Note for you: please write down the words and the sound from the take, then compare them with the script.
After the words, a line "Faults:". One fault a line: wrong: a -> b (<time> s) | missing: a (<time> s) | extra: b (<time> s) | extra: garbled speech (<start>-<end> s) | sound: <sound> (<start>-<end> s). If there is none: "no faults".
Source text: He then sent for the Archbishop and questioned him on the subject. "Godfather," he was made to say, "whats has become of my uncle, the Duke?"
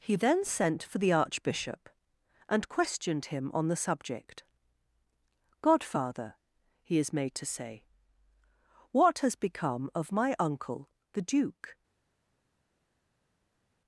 He then sent for the Archbishop and questioned him on the subject. "Godfather," he is made to say, "what has become of my uncle, the Duke?"
Faults:
wrong: was -> is (7.0 s)
wrong: whats -> what (8.9 s)